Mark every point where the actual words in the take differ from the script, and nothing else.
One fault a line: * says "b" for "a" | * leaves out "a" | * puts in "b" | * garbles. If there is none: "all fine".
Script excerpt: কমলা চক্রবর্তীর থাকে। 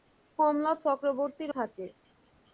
all fine